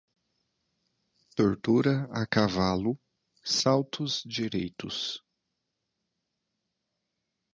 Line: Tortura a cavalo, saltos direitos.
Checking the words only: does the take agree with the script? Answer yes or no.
yes